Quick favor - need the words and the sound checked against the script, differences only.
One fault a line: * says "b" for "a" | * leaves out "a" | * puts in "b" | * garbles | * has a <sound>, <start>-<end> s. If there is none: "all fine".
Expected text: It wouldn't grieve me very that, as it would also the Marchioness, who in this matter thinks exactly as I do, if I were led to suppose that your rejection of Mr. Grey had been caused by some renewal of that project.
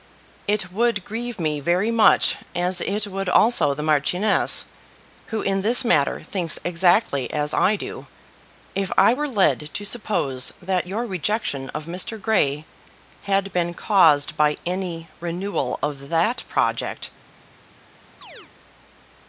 * says "would" for "wouldn't"
* says "much" for "that"
* says "any" for "some"
* has a chirp, 18.2-18.5 s